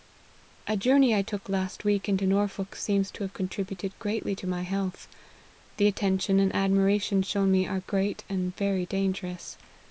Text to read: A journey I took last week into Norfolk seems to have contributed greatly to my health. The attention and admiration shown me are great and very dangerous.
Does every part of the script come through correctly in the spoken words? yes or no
yes